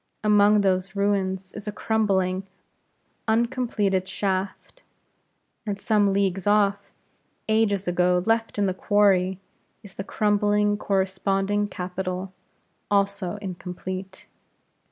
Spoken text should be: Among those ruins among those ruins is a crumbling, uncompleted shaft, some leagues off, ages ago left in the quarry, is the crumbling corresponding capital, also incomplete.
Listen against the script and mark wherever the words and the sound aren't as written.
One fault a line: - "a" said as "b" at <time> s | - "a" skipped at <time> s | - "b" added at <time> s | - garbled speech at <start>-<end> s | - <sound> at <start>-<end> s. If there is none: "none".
- "among those ruins" skipped at 1.5 s
- "and" added at 5.6 s